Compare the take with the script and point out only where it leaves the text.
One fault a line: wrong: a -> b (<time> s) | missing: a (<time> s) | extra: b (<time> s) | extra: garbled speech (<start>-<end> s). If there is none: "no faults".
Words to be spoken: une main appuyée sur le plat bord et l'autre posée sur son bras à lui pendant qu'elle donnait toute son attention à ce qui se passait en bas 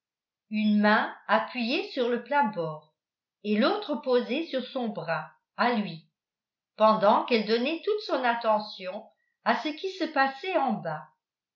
no faults